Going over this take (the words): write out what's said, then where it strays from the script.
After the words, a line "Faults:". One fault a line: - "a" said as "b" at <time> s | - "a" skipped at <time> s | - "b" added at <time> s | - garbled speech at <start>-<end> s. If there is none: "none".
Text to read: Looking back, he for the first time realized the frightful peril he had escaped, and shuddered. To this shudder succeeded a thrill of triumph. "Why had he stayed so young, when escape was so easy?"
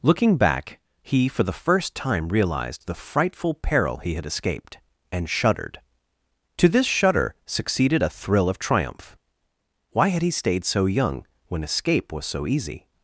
Looking back, he for the first time realized the frightful peril he had escaped, and shuddered. To this shudder succeeded a thrill of triumph. "Why had he stayed so young, when escape was so easy?"
Faults:
none